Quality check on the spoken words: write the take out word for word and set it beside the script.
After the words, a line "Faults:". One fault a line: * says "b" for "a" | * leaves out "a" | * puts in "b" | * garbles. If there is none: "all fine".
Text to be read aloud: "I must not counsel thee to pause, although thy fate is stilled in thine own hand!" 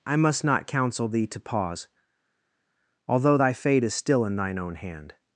"I must not counsel thee to pause, although thy fate is still in thine own hand!"
Faults:
* says "still" for "stilled"